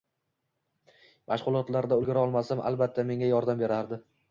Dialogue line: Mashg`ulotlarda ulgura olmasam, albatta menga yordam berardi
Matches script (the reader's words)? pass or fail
pass